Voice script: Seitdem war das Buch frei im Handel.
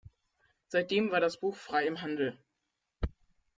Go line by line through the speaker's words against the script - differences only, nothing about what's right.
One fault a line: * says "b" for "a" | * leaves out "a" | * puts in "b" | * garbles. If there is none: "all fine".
all fine